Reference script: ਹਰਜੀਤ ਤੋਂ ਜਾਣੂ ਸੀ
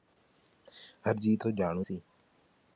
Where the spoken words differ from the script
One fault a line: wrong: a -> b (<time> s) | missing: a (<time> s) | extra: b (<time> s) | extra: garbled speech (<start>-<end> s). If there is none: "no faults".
no faults